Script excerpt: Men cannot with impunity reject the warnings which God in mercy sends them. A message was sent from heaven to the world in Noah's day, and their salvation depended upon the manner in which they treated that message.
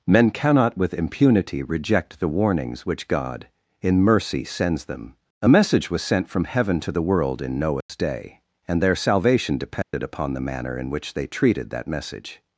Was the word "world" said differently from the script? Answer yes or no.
no